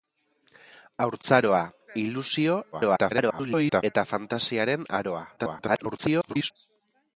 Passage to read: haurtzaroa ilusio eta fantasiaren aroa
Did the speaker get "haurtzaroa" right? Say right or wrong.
right